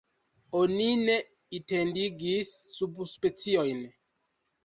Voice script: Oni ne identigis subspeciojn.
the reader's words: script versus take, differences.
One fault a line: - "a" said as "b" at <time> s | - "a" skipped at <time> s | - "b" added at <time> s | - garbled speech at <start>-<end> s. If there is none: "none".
none